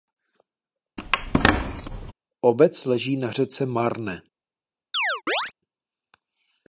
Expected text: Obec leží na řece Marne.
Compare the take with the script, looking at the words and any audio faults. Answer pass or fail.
fail